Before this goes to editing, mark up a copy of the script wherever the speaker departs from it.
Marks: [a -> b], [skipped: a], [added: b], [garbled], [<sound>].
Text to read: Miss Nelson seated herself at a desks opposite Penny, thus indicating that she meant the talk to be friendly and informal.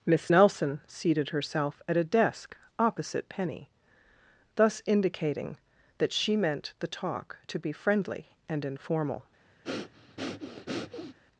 Miss Nelson seated herself at a [desks -> desk] opposite Penny, thus indicating that she meant the talk to be friendly and informal. [breath]